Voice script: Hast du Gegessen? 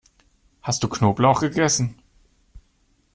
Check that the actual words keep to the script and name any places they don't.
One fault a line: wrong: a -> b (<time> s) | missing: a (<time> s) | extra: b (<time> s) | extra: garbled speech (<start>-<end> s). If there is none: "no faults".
extra: Knoblauch (0.9 s)